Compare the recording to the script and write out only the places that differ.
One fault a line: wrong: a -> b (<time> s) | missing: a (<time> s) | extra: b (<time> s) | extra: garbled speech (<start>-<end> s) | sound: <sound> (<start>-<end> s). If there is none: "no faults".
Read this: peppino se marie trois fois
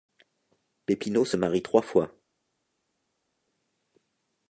no faults